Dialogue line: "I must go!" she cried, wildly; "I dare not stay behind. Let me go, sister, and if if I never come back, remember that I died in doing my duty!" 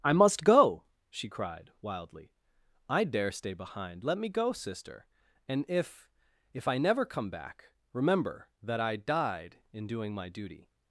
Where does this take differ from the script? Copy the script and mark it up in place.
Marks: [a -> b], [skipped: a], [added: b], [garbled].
"I must go!" she cried, wildly; "I dare [skipped: not] stay behind. Let me go, sister, and if if I never come back, remember that I died in doing my duty!"